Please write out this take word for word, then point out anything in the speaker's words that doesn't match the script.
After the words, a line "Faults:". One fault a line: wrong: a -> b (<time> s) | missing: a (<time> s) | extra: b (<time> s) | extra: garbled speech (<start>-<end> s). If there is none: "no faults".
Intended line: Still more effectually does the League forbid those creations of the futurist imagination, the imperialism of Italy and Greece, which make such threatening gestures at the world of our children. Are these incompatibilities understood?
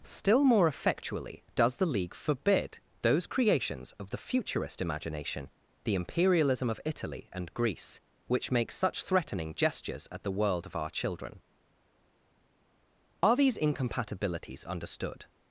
Still more effectually does the League forbid those creations of the futurist imagination, the imperialism of Italy and Greece, which make such threatening gestures at the world of our children. Are these incompatibilities understood?
Faults:
no faults